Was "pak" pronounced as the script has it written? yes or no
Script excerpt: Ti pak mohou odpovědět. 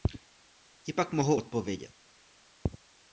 yes